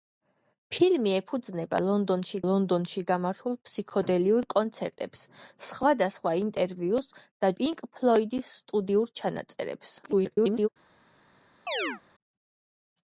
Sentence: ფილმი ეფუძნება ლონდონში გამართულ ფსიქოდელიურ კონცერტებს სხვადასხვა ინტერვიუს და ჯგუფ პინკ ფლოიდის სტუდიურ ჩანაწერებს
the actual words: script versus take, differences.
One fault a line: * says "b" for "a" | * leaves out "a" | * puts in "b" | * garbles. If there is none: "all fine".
* puts in "ლონდონში"
* leaves out "ჯგუფ"
* garbles